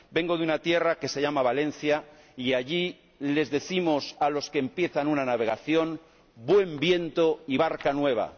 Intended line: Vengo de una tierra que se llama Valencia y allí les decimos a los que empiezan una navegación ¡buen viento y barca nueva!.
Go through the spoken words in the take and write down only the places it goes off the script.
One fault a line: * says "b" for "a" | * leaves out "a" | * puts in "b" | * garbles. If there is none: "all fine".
all fine